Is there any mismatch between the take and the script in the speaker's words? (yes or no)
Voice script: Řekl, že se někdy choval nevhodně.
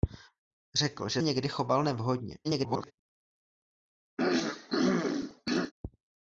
yes